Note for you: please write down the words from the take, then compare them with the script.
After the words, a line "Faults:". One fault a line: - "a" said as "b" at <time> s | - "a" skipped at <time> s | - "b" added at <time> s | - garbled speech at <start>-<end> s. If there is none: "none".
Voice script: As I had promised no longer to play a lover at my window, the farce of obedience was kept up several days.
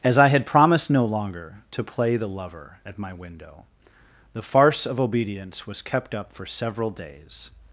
As I had promised no longer to play the lover at my window, the farce of obedience was kept up for several days.
Faults:
- "a" said as "the" at 2.1 s
- "for" added at 6.3 s